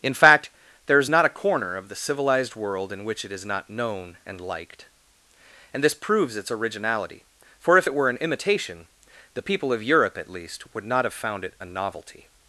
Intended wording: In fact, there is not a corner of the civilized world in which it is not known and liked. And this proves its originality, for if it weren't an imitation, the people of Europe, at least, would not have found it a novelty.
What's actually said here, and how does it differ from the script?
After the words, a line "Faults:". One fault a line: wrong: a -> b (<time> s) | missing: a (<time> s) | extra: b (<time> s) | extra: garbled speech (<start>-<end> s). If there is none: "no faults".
In fact, there is not a corner of the civilized world in which it is not known and liked. And this proves its originality, for if it were an imitation, the people of Europe, at least, would not have found it a novelty.
Faults:
wrong: weren't -> were (7.9 s)